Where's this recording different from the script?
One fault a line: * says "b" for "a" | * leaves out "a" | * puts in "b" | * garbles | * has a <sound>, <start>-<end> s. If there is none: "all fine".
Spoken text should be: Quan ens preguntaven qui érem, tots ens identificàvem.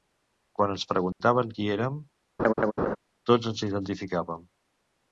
* has a dropout, 1.1-1.2 s
* has a laugh, 2.4-3.0 s